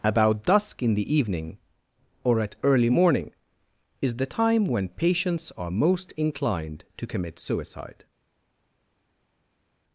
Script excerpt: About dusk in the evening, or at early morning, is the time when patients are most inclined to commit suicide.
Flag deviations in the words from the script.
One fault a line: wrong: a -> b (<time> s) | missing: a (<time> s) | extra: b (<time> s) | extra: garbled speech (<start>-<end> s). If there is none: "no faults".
no faults